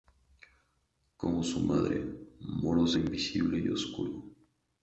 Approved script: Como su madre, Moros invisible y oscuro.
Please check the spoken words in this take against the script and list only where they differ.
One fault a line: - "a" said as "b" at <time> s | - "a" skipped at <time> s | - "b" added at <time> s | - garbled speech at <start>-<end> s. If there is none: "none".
none